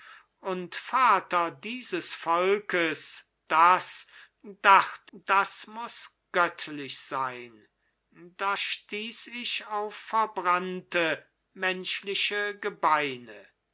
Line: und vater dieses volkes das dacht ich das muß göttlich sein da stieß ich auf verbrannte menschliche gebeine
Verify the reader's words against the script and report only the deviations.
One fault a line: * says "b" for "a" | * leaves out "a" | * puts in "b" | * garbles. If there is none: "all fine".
* leaves out "ich"